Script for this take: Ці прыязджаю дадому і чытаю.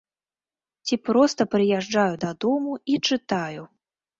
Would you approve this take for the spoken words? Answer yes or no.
no